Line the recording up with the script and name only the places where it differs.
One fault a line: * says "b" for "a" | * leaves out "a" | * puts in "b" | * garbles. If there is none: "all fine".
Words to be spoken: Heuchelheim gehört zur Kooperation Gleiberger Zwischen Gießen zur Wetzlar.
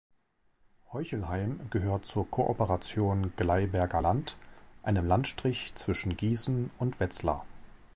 * puts in "Land einem Landstrich"
* says "und" for "zur"